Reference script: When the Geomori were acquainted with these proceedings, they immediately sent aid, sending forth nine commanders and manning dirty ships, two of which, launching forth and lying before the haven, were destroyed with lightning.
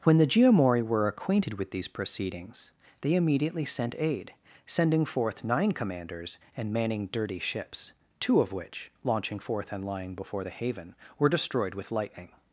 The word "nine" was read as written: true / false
true